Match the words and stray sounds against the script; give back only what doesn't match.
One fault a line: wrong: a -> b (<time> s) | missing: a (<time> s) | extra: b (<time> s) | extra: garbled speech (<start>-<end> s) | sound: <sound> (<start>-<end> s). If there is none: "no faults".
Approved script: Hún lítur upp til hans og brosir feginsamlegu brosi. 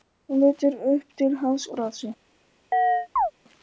missing: og brosir feginsamlegu (1.7 s)
sound: chirp (2.7-3.3 s)